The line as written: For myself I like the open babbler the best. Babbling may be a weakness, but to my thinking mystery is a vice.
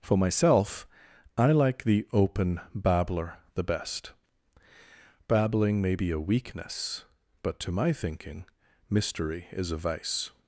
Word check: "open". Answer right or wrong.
right